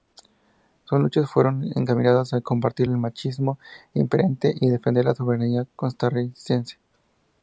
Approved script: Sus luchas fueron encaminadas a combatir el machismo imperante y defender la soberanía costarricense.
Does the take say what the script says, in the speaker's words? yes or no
yes